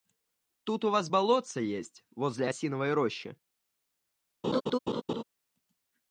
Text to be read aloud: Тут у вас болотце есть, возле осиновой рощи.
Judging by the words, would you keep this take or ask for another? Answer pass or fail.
pass